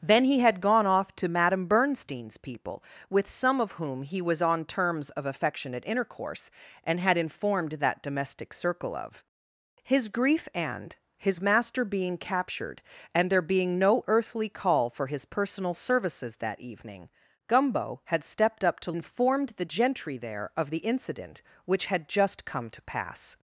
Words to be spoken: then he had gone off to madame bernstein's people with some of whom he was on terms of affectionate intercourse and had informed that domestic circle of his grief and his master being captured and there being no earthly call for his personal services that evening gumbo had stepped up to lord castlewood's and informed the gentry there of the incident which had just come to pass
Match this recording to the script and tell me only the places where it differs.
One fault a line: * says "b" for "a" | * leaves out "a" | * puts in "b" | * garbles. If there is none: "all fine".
* leaves out "lord castlewood's and"